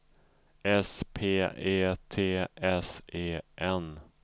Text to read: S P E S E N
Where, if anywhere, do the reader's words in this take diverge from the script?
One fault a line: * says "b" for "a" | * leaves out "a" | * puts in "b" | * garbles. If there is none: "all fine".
* puts in "T"